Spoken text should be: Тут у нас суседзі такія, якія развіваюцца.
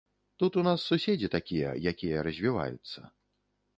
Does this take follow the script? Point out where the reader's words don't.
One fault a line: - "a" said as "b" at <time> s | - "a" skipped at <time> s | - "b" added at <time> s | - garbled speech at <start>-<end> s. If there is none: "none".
none